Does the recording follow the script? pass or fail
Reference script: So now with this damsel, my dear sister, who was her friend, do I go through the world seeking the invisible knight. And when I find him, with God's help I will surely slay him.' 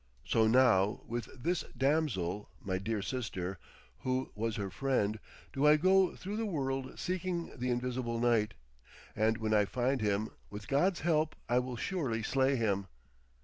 pass